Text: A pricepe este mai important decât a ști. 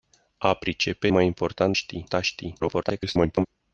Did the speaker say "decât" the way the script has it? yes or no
no